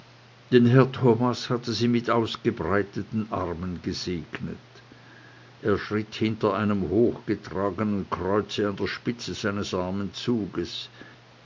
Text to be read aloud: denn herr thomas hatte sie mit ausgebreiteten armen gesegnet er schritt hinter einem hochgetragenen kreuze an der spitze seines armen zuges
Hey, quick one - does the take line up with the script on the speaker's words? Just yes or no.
yes